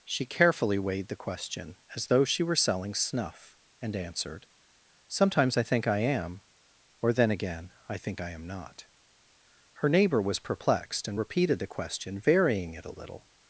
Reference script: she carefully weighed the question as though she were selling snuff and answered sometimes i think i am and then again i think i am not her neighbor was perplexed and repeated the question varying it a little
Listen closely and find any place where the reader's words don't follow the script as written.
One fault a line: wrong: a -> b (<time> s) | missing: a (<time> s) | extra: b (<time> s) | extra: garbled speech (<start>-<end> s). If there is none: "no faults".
wrong: and -> or (7.0 s)